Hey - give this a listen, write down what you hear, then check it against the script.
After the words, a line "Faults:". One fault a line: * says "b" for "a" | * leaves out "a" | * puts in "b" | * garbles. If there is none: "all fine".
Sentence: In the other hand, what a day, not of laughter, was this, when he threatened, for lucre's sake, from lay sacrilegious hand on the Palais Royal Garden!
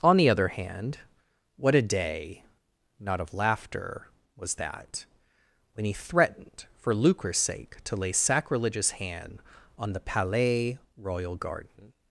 On the other hand, what a day, not of laughter, was that, when he threatened, for lucre's sake, to lay sacrilegious hand on the Palais Royal Garden!
Faults:
* says "On" for "In"
* says "that" for "this"
* says "to" for "from"